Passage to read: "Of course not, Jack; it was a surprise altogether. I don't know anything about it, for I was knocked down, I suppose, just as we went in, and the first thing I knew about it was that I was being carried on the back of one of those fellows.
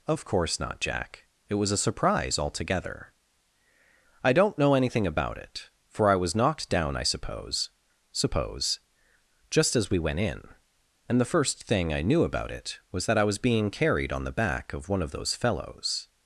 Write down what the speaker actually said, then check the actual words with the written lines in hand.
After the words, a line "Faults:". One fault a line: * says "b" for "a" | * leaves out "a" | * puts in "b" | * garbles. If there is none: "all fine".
"Of course not, Jack; it was a surprise altogether. I don't know anything about it, for I was knocked down, I suppose suppose, just as we went in, and the first thing I knew about it was that I was being carried on the back of one of those fellows.
Faults:
* puts in "suppose"